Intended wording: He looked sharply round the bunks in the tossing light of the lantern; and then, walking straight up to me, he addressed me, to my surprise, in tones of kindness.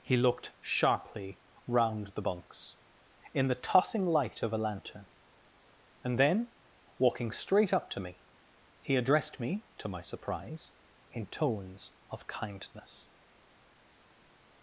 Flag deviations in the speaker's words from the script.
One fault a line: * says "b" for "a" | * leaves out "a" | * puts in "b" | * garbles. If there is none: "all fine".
* says "a" for "the"